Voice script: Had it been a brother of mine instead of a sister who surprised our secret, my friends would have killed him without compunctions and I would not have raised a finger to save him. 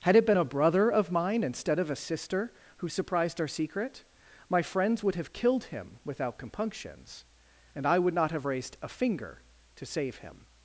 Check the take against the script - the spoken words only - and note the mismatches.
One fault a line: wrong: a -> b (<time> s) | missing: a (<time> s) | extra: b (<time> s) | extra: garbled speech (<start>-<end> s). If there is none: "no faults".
no faults